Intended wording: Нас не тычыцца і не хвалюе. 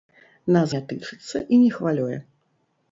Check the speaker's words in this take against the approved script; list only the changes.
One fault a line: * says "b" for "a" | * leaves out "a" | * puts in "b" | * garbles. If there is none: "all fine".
all fine